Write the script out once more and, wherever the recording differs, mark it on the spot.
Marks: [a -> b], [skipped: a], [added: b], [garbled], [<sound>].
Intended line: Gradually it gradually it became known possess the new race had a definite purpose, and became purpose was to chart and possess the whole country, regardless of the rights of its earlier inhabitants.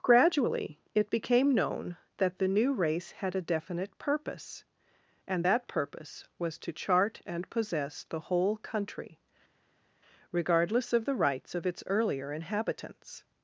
Gradually it [skipped: gradually it] became known [possess -> that] the new race had a definite purpose, and [became -> that] purpose was to chart and possess the whole country, regardless of the rights of its earlier inhabitants.